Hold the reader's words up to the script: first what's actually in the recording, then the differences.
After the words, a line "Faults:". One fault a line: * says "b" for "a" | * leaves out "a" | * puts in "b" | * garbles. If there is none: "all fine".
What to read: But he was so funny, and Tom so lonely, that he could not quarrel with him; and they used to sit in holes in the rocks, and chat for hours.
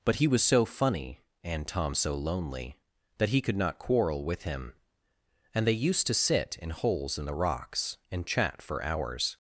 But he was so funny, and Tom so lonely, that he could not quarrel with him; and they used to sit in holes in the rocks, and chat for hours.
Faults:
all fine